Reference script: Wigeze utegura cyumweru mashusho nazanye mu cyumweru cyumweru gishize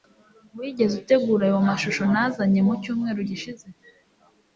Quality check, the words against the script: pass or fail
fail